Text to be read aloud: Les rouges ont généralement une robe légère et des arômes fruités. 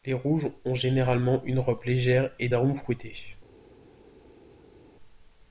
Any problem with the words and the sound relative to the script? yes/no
yes